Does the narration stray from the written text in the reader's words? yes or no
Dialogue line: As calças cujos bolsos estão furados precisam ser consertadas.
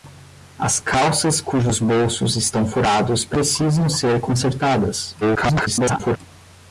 yes